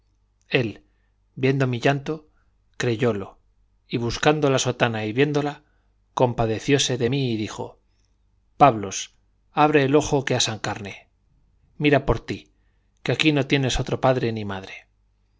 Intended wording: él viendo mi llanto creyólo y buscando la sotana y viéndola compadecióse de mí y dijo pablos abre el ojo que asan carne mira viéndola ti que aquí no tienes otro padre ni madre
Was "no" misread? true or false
false